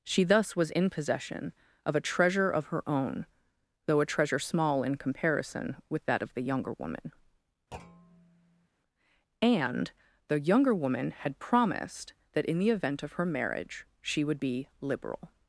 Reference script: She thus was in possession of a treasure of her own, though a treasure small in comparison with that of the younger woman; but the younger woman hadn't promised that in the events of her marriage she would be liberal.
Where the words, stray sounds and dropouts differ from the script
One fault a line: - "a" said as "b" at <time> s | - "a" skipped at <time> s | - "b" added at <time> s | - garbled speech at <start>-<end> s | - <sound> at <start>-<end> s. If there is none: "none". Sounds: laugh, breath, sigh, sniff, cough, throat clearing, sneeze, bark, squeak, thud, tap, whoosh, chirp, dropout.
- thud at 7.7-8.7 s
- "but" said as "and" at 9.4 s
- "hadn't" said as "had" at 11.1 s
- "events" said as "event" at 12.7 s